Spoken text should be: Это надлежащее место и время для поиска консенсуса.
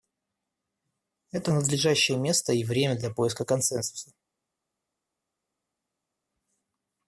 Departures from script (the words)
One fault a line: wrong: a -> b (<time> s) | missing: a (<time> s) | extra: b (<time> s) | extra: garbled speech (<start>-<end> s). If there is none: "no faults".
no faults